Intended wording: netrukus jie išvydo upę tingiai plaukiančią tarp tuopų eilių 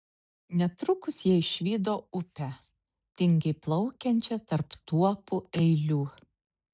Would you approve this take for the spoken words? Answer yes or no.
yes